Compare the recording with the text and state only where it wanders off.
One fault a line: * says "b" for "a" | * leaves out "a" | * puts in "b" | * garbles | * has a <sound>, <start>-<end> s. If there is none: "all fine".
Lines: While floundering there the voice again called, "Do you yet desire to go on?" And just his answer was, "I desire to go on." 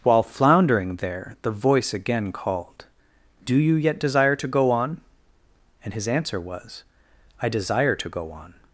* leaves out "just"